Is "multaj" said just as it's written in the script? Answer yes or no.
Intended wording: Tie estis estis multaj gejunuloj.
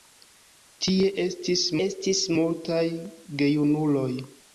yes